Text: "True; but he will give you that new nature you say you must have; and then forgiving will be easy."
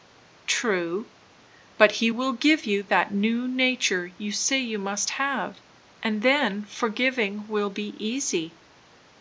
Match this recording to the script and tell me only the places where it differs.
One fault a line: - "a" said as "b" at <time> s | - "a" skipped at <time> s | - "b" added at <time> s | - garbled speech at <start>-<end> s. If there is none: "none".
none